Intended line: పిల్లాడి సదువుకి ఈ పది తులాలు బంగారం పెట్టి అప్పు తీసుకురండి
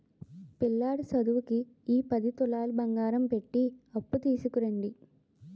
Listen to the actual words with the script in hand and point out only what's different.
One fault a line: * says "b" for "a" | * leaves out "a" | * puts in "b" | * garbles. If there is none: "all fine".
all fine